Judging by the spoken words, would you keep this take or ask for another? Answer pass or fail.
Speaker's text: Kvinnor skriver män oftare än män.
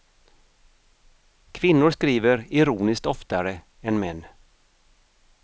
fail